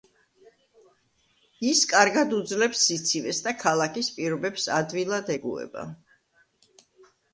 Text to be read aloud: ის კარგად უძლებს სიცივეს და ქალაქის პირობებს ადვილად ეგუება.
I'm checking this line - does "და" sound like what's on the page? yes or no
yes